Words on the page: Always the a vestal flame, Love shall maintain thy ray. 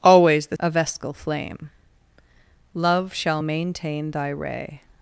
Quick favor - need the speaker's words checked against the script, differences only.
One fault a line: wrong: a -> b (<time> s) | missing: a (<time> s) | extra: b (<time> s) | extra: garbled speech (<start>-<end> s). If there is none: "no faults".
no faults